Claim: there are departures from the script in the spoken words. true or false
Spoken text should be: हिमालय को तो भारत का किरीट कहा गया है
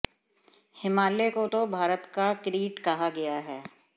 false